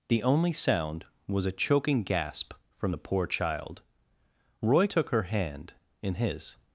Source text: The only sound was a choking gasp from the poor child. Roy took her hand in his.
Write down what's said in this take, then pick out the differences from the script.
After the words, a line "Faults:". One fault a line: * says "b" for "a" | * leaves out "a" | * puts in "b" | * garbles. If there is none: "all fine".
The only sound was a choking gasp from the poor child. Roy took her hand in his.
Faults:
all fine